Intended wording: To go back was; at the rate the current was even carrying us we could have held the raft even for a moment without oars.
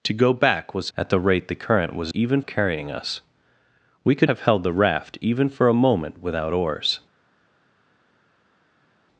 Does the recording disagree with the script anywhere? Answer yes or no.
no